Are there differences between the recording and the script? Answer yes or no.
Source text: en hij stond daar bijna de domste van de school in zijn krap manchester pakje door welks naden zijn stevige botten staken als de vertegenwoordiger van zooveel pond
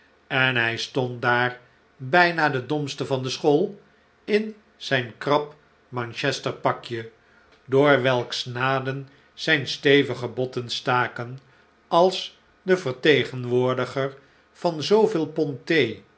no